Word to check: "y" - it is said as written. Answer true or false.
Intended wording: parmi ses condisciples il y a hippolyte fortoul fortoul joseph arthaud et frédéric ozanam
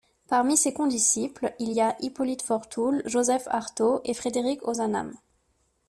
true